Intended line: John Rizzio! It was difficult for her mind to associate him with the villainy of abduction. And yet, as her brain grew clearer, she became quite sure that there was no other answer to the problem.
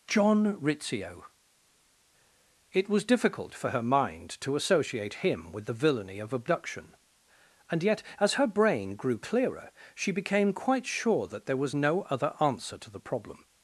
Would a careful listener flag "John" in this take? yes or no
no